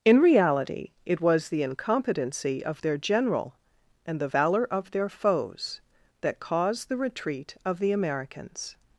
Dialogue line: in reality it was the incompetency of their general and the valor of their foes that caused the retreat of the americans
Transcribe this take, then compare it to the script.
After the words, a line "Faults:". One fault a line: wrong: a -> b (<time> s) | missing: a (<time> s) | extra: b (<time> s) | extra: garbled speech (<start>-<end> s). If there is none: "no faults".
in reality it was the incompetency of their general and the valor of their foes that caused the retreat of the americans
Faults:
no faults